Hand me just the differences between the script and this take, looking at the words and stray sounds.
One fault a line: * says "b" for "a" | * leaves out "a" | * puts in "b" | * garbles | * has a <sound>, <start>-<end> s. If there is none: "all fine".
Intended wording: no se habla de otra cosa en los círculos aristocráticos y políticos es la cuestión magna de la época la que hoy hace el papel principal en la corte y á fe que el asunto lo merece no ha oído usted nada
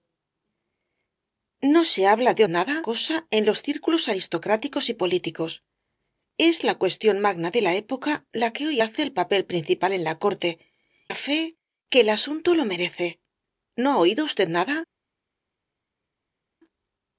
* says "nada" for "otra"
* leaves out "y"